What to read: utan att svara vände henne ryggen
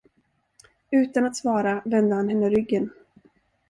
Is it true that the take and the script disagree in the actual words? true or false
true